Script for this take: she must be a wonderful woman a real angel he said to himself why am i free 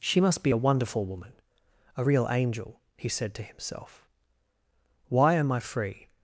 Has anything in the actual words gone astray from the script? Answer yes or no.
no